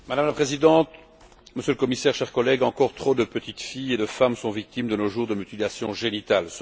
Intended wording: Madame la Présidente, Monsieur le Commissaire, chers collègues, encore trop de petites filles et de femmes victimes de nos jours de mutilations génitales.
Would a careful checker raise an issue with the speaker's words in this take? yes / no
yes